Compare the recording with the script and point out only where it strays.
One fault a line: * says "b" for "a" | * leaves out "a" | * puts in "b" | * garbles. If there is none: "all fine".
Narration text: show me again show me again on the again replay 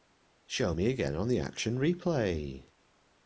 * leaves out "show me again"
* says "action" for "again"